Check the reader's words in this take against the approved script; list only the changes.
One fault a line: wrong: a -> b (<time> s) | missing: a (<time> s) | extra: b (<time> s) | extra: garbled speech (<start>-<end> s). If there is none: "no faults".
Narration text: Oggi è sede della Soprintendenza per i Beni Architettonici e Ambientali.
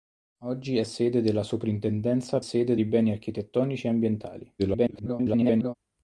wrong: per -> sede (2.4 s)
extra: garbled speech (4.6-5.7 s)